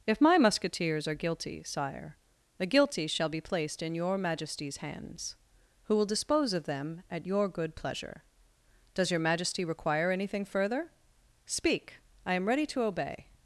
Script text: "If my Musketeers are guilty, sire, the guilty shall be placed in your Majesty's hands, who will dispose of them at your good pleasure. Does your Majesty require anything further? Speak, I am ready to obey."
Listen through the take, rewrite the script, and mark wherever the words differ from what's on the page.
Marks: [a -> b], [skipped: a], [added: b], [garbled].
"If my Musketeers are guilty, sire, the guilty shall be placed in your Majesty's hands, who will dispose of them at your good pleasure. Does your Majesty require anything further? Speak, I am ready to obey."